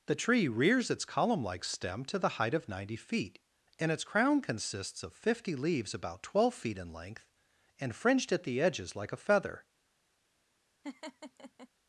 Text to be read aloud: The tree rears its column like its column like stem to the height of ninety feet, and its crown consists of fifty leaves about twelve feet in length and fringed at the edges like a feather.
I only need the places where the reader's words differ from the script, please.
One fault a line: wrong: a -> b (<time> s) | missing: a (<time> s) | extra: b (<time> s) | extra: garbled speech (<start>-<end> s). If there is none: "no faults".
missing: its column like (1.6 s)